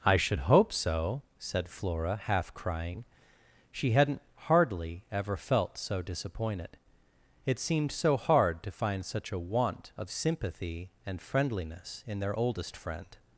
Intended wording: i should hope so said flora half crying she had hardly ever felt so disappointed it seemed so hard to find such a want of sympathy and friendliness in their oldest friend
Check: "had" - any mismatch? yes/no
yes